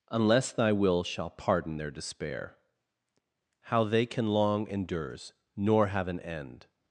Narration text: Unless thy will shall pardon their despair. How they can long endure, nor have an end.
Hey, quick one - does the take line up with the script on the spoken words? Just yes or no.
no